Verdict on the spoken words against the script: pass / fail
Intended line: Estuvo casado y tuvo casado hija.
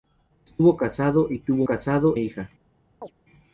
pass